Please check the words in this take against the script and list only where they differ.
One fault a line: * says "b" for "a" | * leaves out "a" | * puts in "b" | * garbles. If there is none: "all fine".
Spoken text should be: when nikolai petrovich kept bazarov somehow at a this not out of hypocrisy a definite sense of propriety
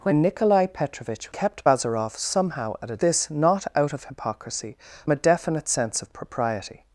all fine